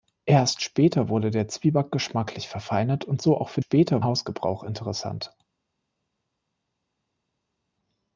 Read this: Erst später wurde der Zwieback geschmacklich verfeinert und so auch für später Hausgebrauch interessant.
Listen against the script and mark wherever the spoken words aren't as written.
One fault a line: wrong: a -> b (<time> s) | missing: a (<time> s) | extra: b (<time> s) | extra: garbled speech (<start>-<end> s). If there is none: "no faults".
no faults